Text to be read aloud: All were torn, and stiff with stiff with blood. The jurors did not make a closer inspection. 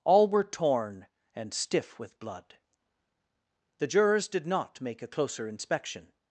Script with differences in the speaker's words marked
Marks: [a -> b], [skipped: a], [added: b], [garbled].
All were torn, and stiff with [skipped: stiff with] blood. The jurors did not make a closer inspection.